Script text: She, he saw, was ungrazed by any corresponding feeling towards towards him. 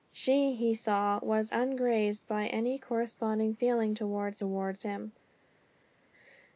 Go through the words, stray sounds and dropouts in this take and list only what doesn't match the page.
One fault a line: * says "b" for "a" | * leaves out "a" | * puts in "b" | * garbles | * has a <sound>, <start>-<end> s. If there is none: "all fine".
all fine